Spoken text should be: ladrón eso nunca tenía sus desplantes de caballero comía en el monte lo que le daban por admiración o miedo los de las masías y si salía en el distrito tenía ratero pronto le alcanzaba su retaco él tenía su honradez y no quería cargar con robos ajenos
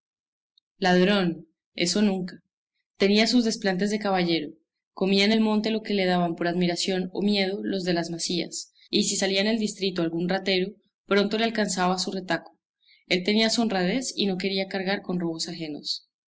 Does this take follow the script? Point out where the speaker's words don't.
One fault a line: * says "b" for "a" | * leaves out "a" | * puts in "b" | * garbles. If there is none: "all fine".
* says "algún" for "tenía"